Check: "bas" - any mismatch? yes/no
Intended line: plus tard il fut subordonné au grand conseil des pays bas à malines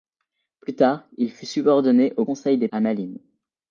yes